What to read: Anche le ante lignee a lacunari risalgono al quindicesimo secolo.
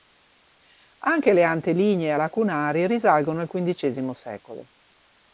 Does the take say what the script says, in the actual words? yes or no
yes